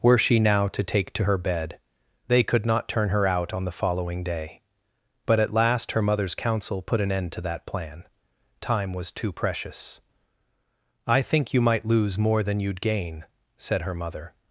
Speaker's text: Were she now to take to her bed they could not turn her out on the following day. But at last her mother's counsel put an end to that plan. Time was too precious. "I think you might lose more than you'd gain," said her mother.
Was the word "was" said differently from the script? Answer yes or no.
no